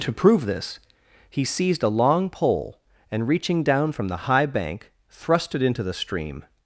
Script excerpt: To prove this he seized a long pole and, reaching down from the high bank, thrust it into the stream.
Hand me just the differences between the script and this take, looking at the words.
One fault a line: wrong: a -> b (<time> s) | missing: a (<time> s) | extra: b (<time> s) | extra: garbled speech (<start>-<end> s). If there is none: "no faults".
no faults